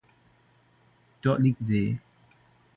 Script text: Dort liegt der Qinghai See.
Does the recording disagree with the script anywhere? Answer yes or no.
yes